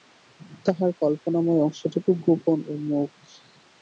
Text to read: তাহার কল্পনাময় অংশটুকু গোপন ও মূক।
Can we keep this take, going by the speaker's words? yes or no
yes